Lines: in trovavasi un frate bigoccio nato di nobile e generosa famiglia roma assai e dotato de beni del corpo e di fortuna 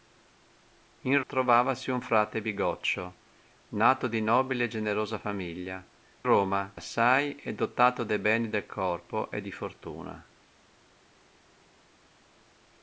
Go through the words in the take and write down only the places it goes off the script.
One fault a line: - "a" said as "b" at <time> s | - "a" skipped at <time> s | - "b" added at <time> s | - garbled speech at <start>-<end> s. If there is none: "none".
none